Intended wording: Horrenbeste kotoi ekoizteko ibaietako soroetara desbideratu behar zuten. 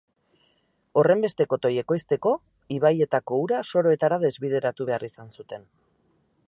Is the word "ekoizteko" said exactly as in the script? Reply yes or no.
yes